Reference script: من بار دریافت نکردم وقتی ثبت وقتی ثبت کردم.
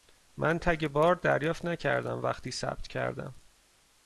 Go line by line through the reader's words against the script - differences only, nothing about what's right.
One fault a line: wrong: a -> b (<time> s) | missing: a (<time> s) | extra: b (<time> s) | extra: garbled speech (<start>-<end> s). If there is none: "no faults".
extra: تگ (0.6 s)
missing: وقتی ثبت (2.9 s)